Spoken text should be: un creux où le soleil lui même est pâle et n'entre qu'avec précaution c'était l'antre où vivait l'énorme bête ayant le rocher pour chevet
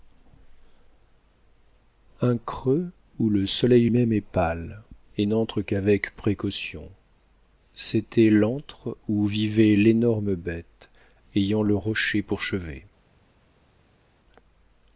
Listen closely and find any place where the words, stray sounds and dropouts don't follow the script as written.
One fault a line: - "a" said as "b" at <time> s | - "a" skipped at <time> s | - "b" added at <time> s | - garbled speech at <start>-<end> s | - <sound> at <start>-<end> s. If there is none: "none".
- "lui" skipped at 3.9 s